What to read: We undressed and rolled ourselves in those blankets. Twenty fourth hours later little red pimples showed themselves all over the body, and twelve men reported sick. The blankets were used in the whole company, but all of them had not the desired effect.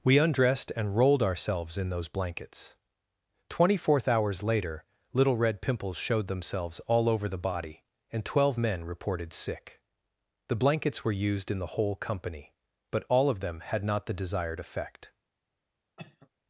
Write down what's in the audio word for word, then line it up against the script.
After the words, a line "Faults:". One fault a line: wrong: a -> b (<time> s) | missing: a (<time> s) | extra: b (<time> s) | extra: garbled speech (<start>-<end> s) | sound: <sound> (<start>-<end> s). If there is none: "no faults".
We undressed and rolled ourselves in those blankets. Twenty fourth hours later little red pimples showed themselves all over the body, and twelve men reported sick. The blankets were used in the whole company, but all of them had not the desired effect.
Faults:
sound: cough (16.0-16.3 s)